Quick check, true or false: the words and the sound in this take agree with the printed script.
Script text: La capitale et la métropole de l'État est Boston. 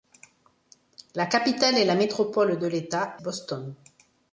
false